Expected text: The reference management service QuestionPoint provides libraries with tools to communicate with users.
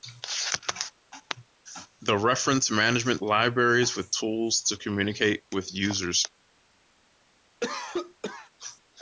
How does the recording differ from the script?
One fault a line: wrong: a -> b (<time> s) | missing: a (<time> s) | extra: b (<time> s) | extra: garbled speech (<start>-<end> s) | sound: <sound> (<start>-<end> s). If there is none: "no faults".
missing: service QuestionPoint provides (3.2 s)
sound: cough (7.6-8.5 s)